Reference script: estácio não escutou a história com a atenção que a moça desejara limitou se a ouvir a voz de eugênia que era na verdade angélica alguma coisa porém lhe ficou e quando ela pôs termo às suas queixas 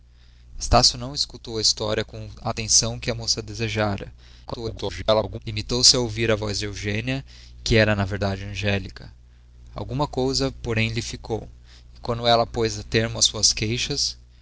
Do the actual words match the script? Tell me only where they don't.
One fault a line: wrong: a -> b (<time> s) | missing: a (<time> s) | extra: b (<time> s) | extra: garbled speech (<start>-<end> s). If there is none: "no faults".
extra: garbled speech (4.5-5.4 s)